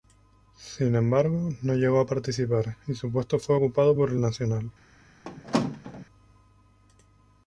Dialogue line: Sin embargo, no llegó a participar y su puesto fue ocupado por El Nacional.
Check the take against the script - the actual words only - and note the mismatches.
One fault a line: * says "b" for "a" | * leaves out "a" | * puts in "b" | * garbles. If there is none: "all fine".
all fine